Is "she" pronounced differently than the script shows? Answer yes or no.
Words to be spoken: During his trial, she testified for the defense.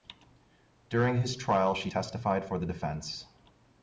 no